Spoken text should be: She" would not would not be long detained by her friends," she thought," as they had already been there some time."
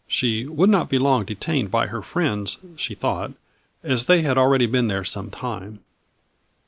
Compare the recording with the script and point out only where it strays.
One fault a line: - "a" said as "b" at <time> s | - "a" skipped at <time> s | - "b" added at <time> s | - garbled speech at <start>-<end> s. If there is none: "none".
- "would not" skipped at 0.9 s